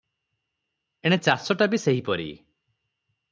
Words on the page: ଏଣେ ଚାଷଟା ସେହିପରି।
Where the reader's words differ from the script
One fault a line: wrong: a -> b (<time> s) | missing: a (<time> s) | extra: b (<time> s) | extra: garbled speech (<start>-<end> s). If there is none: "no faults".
extra: ବି (1.7 s)